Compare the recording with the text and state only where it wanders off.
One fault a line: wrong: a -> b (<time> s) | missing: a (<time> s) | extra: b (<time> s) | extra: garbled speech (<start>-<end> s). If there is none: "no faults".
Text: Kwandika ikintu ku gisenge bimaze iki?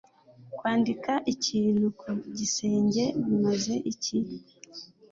no faults